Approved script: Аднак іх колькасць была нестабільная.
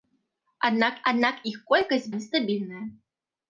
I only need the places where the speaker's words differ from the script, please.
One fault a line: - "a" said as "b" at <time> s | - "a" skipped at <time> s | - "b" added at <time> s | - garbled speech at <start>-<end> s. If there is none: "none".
- "аднак" added at 1.1 s
- "была" skipped at 2.1 s